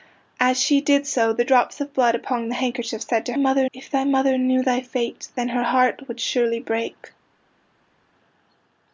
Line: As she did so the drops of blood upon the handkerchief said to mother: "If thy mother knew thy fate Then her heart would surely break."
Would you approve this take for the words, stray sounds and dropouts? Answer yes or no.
yes